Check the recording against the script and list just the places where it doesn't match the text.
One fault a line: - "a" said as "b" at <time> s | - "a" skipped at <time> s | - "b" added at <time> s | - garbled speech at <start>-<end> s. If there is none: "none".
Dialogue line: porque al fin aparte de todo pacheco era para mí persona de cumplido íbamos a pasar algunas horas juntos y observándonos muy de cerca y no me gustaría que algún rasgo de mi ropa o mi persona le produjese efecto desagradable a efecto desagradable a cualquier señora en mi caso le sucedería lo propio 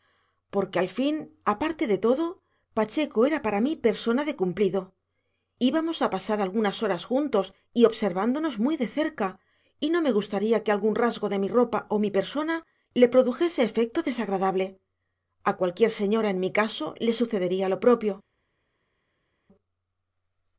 - "efecto desagradable a" skipped at 15.6 s